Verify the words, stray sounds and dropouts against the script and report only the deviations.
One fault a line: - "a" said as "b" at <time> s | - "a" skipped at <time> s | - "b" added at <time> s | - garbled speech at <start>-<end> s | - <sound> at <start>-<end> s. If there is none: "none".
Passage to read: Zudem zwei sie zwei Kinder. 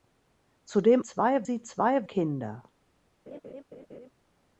- laugh at 3.3-4.1 s